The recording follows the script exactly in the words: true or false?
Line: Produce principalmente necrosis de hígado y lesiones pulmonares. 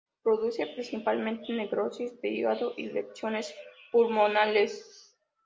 true